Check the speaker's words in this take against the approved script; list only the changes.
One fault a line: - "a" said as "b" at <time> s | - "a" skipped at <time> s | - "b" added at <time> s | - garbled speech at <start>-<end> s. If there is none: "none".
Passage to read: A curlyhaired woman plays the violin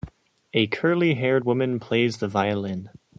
none